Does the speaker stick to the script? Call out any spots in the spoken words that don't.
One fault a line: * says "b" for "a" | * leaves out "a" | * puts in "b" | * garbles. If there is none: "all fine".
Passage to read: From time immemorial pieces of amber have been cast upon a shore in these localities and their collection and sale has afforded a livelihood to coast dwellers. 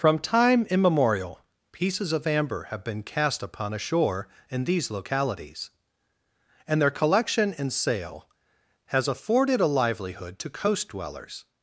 all fine